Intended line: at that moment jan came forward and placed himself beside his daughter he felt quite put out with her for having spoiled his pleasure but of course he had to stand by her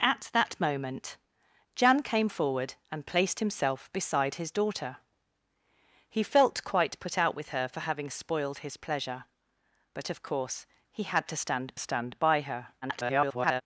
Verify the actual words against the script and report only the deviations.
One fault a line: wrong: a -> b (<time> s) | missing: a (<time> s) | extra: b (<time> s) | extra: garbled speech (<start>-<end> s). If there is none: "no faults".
extra: stand (11.8 s)
extra: garbled speech (12.8-13.6 s)